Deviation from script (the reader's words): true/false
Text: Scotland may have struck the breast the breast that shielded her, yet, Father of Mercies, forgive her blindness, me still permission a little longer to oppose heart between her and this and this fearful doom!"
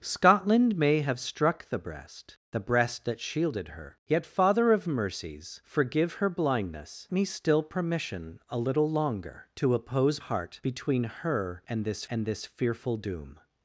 false